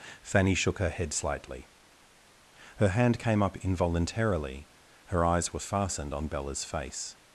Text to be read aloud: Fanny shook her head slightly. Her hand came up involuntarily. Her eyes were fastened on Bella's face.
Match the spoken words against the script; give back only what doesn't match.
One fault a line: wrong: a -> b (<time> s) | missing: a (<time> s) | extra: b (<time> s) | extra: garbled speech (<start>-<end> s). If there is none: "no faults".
no faults